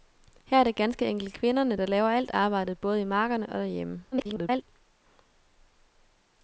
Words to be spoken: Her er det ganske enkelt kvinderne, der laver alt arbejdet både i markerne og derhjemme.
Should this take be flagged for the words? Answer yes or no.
yes